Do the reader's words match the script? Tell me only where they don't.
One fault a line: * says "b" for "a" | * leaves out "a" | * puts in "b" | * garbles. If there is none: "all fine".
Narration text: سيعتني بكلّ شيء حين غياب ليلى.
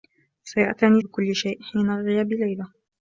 all fine